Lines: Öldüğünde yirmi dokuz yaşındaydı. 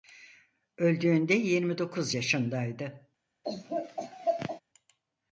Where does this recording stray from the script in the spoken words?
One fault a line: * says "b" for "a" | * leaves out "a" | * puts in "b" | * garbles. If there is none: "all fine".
all fine